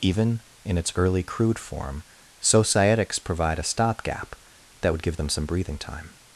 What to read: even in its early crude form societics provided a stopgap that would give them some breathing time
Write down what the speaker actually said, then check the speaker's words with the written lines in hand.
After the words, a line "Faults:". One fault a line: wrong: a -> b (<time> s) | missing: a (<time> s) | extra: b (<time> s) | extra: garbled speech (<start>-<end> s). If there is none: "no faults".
even in its early crude form societics provide a stopgap that would give them some breathing time
Faults:
wrong: provided -> provide (3.2 s)